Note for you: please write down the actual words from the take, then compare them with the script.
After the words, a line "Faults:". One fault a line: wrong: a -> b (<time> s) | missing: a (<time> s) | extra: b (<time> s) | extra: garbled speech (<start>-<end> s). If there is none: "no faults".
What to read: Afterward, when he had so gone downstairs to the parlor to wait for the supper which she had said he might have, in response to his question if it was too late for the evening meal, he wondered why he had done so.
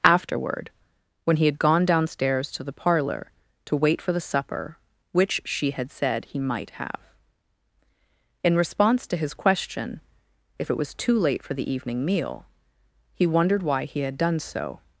Afterward, when he had gone downstairs to the parlor to wait for the supper which she had said he might have, in response to his question if it was too late for the evening meal, he wondered why he had done so.
Faults:
missing: so (1.6 s)